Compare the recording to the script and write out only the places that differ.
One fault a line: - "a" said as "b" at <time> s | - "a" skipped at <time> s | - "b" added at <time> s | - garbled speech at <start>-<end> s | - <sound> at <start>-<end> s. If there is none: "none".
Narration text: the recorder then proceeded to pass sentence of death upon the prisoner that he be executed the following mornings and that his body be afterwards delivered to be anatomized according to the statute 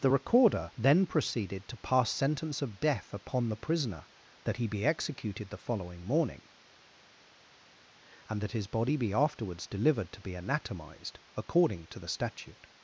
- "mornings" said as "morning" at 6.0 s